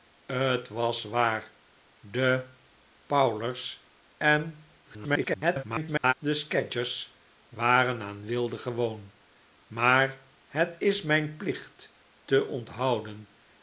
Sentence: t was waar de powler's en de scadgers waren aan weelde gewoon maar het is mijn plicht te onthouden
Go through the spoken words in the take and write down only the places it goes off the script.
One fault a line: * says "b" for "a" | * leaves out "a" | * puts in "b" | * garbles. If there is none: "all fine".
* garbles